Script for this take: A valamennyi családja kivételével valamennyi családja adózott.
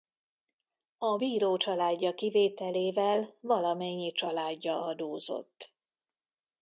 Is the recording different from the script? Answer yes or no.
yes